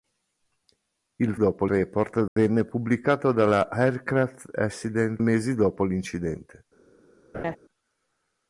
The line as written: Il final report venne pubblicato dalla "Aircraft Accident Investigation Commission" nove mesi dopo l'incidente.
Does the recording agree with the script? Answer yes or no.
no